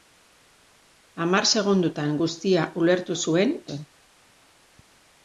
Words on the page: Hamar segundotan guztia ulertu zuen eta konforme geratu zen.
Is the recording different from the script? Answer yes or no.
yes